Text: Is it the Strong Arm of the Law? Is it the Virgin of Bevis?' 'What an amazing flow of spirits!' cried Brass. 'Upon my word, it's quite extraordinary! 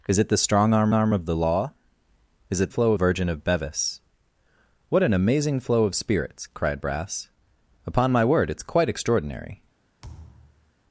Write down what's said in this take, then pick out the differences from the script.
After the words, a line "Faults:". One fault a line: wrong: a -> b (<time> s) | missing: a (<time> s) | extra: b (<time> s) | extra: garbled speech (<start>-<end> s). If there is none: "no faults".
Is it the Strong Arm Arm of the Law? Is it flow Virgin of Bevis?' 'What an amazing flow of spirits!' cried Brass. 'Upon my word, it's quite extraordinary!
Faults:
extra: Arm (0.9 s)
wrong: the -> flow (2.7 s)